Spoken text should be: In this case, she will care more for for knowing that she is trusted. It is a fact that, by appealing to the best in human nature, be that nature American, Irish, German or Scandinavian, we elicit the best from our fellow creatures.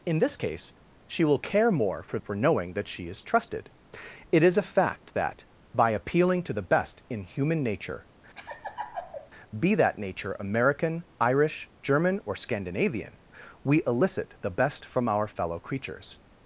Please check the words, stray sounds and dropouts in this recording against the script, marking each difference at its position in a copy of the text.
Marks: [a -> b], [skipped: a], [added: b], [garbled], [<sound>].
In this case, she will care more for for knowing that she is trusted. It is a fact that, by appealing to the best in human nature, [laugh] be that nature American, Irish, German or Scandinavian, we elicit the best from our fellow creatures.